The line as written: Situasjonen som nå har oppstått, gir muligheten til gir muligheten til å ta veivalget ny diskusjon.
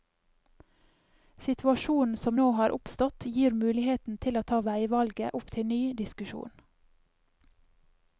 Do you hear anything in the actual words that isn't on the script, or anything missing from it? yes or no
yes